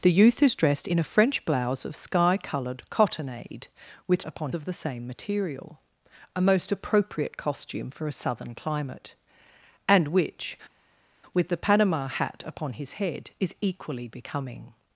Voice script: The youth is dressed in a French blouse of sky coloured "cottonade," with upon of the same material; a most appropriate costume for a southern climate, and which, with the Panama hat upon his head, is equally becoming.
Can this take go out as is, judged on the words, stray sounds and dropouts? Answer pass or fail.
pass